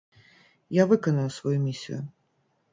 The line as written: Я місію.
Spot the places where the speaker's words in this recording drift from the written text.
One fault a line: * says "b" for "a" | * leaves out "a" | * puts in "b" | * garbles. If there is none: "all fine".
* puts in "выканаю сваю"